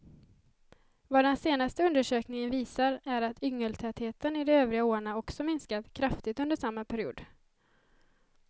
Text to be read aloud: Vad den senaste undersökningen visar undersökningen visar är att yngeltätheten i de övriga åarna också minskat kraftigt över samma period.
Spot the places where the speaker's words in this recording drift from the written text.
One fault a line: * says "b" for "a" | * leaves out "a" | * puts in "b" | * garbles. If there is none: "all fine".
* leaves out "undersökningen visar"
* says "under" for "över"